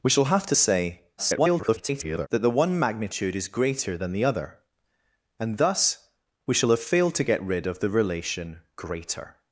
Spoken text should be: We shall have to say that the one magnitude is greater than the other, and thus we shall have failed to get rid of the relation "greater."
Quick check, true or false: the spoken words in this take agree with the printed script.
false